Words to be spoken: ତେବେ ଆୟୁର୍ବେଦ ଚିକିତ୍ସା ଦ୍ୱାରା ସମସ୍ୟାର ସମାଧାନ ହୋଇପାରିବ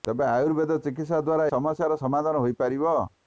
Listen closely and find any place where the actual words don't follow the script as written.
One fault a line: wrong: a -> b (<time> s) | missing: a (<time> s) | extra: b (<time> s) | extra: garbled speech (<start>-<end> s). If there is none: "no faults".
no faults